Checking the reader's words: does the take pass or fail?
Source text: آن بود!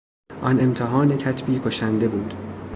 fail